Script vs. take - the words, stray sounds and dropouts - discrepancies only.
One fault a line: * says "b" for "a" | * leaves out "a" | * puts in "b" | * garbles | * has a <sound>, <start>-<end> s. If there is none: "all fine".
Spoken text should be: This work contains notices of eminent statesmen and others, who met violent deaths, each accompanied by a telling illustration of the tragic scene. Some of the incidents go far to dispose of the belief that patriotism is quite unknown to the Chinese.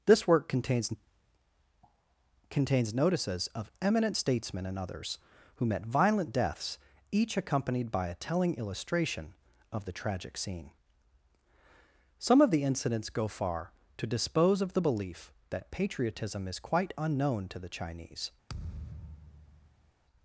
* puts in "contains"
* has a thud, 18.5-19.9 s